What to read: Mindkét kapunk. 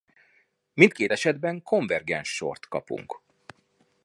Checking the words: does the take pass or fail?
fail